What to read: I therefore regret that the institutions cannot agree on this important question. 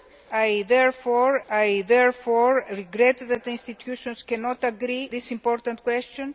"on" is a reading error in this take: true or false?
true